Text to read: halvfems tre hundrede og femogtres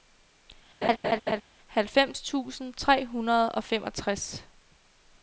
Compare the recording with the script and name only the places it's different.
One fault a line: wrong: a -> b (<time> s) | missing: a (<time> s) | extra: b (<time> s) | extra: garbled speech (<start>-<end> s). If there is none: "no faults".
extra: tusind (2.2 s)